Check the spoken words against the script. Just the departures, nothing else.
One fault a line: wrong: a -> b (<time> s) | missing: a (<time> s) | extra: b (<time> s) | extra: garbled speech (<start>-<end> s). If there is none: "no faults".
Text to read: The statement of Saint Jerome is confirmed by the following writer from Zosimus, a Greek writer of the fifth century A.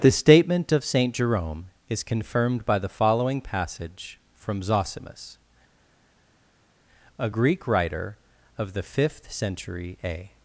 wrong: writer -> passage (3.4 s)